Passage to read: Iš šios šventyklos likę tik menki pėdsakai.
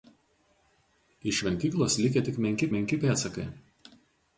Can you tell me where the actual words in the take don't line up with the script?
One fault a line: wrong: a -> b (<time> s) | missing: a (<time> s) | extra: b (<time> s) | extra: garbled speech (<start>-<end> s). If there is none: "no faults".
missing: šios (1.4 s)
extra: menki (2.8 s)